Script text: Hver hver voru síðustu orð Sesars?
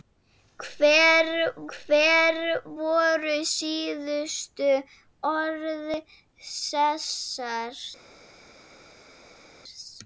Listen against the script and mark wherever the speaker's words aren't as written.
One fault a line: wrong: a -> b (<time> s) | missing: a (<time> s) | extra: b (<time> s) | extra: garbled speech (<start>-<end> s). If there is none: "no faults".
no faults